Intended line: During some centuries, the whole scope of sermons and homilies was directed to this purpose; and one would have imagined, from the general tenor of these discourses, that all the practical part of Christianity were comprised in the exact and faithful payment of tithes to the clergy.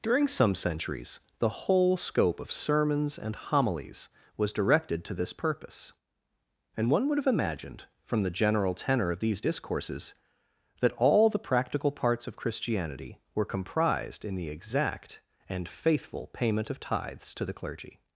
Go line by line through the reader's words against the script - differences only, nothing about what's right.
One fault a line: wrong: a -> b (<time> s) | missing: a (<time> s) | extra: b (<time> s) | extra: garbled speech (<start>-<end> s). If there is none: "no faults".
wrong: part -> parts (11.9 s)